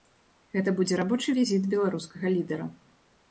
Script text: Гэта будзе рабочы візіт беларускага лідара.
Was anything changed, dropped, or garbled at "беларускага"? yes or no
no